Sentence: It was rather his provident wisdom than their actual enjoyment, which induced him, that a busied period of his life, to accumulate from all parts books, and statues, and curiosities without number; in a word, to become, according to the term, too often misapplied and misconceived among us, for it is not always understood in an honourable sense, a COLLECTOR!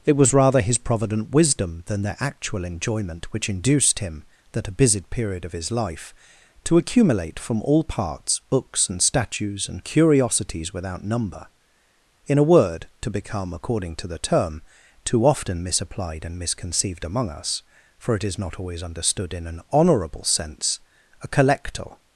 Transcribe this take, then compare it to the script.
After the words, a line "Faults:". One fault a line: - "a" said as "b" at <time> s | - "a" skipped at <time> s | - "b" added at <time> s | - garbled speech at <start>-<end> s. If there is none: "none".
It was rather his provident wisdom than their actual enjoyment, which induced him, that a busied period of his life, to accumulate from all parts books, and statues, and curiosities without number; in a word, to become, according to the term, too often misapplied and misconceived among us, for it is not always understood in an honourable sense, a COLLECTOR!
Faults:
none